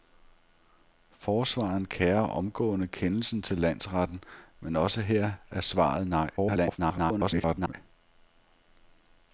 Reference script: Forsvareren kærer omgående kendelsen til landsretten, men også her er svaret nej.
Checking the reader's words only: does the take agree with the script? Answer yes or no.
no